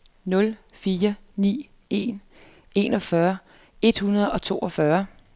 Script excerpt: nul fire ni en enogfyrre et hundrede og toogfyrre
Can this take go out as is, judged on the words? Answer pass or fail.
pass